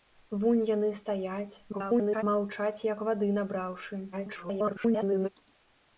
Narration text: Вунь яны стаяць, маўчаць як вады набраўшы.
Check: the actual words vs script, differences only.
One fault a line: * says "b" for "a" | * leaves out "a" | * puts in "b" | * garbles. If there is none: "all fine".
* garbles
* garbles